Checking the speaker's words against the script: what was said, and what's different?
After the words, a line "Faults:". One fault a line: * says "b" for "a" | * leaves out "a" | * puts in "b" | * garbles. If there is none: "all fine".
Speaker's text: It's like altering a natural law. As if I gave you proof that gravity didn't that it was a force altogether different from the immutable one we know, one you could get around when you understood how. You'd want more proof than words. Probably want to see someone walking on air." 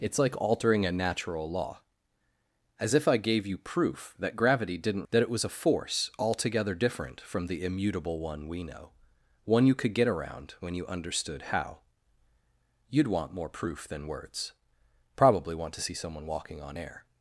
It's like altering a natural law. As if I gave you proof that gravity didn't that it was a force altogether different from the immutable one we know, one you could get around when you understood how. You'd want more proof than words. Probably want to see someone walking on air."
Faults:
all fine